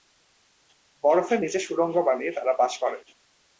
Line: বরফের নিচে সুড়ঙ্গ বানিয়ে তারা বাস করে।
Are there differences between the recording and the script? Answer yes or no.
no